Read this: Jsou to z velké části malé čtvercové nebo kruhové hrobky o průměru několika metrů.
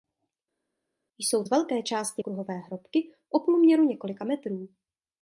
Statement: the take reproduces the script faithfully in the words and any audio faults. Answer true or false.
false